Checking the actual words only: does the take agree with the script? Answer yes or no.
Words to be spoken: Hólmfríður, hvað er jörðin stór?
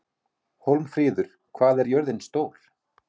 yes